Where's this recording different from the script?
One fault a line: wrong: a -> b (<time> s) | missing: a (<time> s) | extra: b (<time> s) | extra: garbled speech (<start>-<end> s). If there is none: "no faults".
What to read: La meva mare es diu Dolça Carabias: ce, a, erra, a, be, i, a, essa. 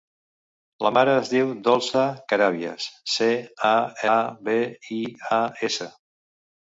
missing: meva (0.9 s)
missing: erra (3.7 s)